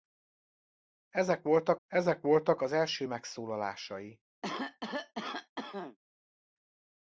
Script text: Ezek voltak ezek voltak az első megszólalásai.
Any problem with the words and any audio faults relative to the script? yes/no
yes